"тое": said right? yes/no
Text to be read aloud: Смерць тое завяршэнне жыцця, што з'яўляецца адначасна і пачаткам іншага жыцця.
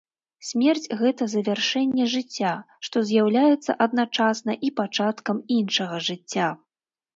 no